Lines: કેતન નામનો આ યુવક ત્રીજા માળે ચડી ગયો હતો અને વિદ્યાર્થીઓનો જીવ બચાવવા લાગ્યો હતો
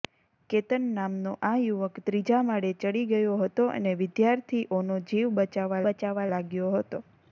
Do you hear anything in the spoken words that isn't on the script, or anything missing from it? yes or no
yes